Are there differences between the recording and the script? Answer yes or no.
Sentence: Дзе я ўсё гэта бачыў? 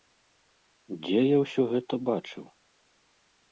no